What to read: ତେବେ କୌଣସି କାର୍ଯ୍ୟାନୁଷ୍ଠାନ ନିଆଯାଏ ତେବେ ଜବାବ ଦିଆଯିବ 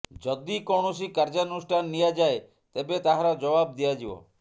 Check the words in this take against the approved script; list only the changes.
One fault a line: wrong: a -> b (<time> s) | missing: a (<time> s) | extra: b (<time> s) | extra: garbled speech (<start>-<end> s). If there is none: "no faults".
wrong: ତେବେ -> ଯଦି (0.2 s)
extra: ତାହାର (3.0 s)